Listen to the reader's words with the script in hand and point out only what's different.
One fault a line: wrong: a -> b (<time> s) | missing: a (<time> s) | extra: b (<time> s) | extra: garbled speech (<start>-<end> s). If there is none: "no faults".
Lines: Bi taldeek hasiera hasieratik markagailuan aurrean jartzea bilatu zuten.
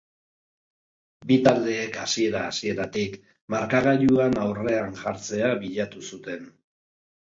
no faults